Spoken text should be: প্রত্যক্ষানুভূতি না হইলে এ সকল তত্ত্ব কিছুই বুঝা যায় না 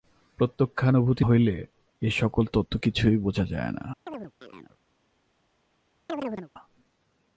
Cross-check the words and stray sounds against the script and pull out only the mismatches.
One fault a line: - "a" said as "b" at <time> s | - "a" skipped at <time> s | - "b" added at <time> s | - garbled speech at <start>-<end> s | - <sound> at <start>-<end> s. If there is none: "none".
- "না" skipped at 1.2 s
- chirp at 4.1-4.8 s
- chirp at 6.1-6.5 s